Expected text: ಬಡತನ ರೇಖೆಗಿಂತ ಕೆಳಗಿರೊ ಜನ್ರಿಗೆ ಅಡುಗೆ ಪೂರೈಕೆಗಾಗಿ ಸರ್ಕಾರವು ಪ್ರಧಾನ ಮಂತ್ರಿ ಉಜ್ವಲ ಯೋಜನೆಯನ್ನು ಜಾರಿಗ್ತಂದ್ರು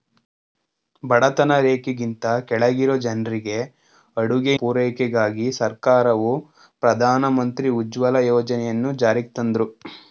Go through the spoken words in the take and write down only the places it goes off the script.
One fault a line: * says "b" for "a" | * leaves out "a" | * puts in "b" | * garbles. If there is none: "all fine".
all fine